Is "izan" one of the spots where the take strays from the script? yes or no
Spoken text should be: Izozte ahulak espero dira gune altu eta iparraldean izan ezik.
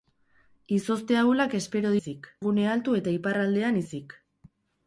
yes